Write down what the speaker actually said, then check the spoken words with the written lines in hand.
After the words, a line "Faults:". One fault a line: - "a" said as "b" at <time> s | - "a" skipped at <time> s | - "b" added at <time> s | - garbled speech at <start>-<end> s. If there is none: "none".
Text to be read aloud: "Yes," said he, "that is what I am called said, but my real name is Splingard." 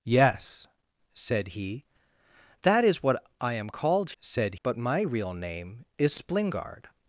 "Yes," said he, "that is what I am called said, but my real name is Splingard."
Faults:
none